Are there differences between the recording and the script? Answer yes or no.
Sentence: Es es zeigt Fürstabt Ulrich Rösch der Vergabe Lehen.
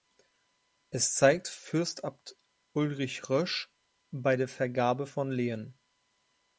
yes